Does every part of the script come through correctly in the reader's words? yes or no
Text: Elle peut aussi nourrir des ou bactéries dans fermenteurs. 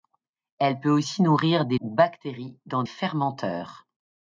yes